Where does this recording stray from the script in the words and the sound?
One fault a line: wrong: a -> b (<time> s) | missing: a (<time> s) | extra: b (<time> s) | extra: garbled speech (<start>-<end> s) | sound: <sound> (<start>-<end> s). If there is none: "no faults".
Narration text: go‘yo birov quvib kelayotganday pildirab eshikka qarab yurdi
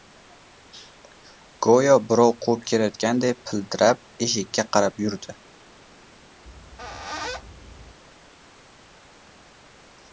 sound: squeak (6.5-8.0 s)